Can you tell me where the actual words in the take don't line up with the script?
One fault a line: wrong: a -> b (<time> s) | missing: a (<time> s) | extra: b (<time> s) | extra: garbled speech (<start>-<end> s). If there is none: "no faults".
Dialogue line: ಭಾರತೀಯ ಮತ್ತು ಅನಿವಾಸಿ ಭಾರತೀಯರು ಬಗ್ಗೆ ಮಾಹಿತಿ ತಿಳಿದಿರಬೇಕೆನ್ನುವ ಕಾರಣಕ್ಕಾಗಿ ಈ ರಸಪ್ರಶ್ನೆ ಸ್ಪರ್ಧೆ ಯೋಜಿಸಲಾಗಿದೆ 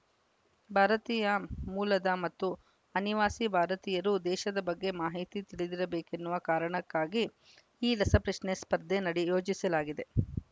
extra: ಮೂಲದ (1.7 s)
extra: ದೇಶದ (4.2 s)
extra: ನಡೆ (9.1 s)